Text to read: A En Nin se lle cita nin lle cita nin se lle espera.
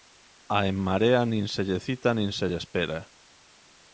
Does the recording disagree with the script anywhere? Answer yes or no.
yes